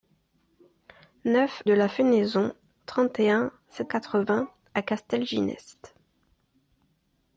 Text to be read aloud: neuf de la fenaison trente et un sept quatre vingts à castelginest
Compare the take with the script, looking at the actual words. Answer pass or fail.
pass